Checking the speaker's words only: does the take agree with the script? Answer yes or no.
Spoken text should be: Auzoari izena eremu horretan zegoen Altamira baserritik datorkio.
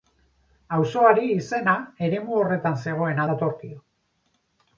no